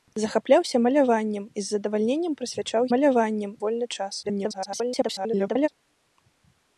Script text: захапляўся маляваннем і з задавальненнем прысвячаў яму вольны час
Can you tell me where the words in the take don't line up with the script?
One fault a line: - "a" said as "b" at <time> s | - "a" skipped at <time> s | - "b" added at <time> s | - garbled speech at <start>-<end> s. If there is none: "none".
- "яму" said as "маляваннем" at 2.9 s
- garbled speech at 4.2-5.7 s